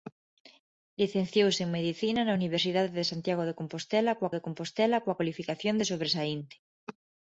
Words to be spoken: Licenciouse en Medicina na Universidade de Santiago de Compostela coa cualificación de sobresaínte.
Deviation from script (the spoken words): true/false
true